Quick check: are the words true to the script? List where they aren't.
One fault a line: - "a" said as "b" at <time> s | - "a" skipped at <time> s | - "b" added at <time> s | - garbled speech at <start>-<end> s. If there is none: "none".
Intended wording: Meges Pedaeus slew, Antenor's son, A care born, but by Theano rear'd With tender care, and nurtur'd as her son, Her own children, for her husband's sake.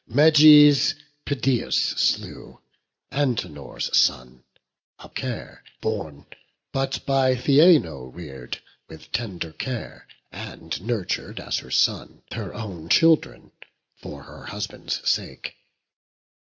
none